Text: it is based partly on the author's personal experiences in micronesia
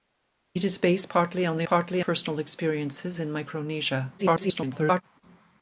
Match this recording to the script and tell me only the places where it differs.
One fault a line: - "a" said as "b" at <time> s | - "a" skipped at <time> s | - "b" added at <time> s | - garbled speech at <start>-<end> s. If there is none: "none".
- "author's" said as "partly" at 1.7 s
- garbled speech at 4.2-5.0 s